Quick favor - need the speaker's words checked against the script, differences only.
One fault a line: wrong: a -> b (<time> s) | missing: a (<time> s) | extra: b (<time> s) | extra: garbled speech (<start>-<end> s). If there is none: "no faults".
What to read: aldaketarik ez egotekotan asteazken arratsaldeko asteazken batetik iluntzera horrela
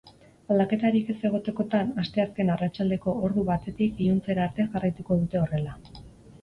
wrong: asteazken -> ordu (3.3 s)
extra: arte jarraituko dute (4.5 s)